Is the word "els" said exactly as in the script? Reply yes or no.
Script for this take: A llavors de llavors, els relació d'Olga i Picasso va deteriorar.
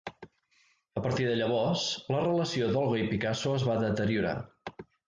no